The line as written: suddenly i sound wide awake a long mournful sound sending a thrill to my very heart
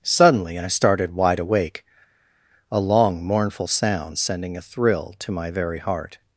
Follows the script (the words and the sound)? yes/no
no